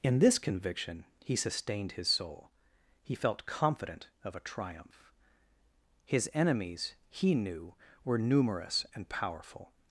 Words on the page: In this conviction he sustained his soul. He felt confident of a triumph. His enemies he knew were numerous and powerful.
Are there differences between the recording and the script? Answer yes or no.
no